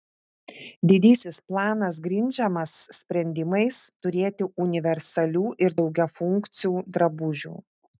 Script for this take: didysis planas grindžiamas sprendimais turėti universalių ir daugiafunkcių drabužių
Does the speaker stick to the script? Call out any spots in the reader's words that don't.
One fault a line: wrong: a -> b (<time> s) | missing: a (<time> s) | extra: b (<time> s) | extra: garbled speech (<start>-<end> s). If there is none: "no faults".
no faults